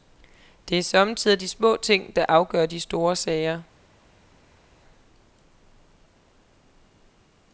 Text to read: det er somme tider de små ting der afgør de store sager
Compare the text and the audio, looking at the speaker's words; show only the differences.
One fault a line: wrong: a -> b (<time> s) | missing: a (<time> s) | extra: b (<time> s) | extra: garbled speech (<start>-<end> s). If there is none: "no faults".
no faults